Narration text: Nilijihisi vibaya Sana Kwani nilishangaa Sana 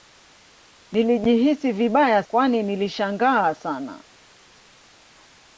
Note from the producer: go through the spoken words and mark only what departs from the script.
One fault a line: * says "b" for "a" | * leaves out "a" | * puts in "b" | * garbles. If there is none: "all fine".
* leaves out "Sana"